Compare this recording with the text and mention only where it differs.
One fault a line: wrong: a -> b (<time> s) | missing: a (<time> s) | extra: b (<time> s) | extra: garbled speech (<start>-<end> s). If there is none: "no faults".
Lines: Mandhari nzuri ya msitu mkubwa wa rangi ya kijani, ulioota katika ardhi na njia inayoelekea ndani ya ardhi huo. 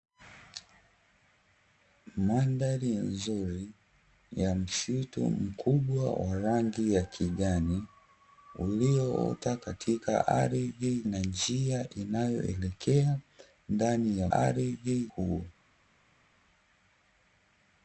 no faults